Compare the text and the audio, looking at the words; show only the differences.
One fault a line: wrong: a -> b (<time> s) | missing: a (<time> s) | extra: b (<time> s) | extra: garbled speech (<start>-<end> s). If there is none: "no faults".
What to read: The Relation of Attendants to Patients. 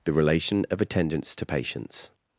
no faults